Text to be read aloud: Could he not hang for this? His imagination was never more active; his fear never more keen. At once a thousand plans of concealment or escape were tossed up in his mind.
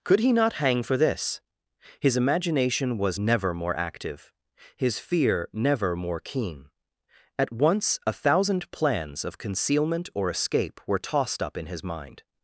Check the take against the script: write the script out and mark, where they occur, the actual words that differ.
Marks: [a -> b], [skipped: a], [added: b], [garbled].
Could he not hang for this? His imagination was never more active; his fear never more keen. At once a thousand plans of concealment or escape were tossed up in his mind.